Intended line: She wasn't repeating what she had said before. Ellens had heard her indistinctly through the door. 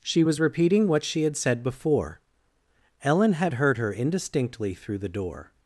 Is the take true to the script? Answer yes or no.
no